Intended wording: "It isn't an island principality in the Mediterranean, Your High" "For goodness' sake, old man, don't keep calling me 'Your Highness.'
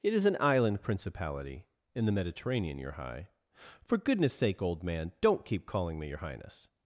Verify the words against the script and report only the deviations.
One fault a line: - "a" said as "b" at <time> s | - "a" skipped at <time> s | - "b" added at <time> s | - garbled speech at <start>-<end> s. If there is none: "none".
- "isn't" said as "is" at 0.1 s